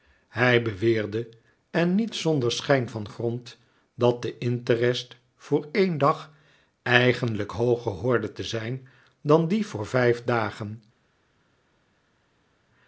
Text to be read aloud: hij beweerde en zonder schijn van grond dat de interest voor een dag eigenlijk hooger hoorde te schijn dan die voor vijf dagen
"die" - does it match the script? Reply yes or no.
yes